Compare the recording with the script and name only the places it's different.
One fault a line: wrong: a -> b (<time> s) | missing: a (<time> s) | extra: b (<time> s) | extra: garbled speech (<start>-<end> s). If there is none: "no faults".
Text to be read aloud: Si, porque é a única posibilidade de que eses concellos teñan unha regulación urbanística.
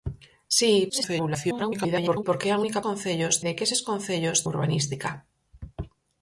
extra: garbled speech (0.9-2.2 s)
wrong: posibilidade -> concellos (2.9 s)
missing: teñan unha regulación (4.4 s)